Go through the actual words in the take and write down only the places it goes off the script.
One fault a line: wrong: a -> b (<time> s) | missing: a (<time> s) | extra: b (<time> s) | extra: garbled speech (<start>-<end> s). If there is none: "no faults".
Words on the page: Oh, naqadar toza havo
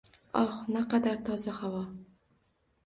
no faults